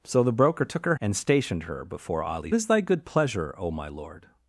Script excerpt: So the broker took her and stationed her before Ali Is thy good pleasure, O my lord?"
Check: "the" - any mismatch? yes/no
no